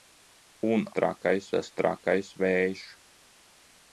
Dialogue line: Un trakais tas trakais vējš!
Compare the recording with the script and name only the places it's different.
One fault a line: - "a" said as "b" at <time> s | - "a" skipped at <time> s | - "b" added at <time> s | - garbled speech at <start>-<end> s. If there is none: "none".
none